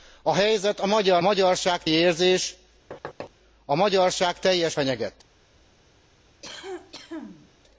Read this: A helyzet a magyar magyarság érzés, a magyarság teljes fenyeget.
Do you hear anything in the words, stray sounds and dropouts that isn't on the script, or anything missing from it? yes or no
yes